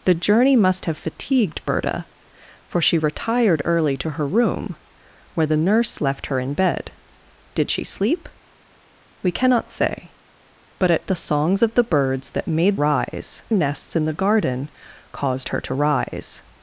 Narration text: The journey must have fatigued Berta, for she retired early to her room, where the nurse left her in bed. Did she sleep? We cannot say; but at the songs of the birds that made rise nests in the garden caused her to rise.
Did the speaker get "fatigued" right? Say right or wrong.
right